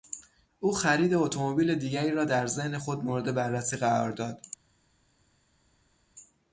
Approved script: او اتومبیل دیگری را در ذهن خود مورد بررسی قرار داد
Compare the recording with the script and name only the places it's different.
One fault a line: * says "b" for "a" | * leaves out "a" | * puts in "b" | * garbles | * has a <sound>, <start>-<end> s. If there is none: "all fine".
* puts in "خرید"